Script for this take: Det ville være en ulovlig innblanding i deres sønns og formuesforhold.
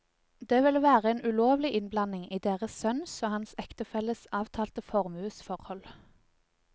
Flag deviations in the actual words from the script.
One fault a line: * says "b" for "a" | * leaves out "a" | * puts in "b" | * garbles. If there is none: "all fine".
* puts in "hans ektefelles avtalte"